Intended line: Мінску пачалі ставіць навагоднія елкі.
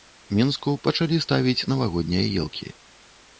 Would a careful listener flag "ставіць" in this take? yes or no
no